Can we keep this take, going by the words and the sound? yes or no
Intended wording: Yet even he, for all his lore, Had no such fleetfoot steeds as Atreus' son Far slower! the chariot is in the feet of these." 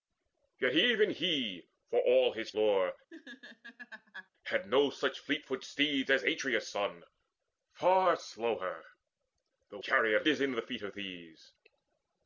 no